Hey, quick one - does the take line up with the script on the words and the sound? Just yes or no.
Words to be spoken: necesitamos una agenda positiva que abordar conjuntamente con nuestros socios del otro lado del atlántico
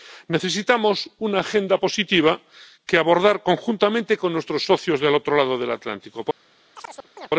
no